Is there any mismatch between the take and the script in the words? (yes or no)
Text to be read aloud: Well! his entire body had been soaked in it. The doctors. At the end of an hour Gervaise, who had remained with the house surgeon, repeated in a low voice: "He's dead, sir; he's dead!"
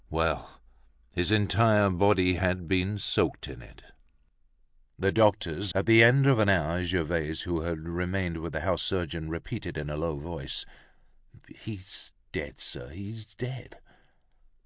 no